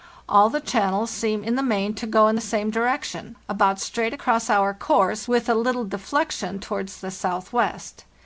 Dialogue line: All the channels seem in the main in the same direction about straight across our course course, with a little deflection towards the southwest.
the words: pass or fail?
fail